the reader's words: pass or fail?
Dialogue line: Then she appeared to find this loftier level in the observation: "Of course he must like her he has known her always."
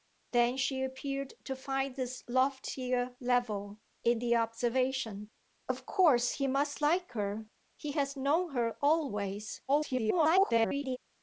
fail